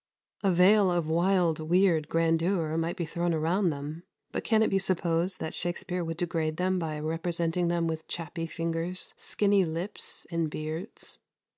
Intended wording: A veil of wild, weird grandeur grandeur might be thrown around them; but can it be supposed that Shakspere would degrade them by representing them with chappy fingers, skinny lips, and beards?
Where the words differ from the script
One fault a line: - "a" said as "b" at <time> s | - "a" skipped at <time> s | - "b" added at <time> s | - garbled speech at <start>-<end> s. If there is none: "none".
- "grandeur" skipped at 2.8 s